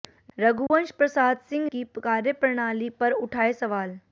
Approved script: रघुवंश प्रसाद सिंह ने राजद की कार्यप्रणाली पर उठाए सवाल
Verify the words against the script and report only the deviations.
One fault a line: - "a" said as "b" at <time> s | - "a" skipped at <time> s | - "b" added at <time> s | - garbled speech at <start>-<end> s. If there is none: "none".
- "ने राजद" skipped at 1.7 s